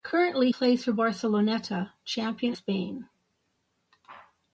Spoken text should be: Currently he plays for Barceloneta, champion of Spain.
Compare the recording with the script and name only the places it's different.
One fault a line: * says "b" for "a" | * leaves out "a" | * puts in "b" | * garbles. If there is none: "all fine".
* leaves out "he"
* leaves out "of"